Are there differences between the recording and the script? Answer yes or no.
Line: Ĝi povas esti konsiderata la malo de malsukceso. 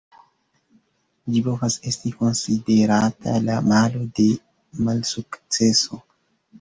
no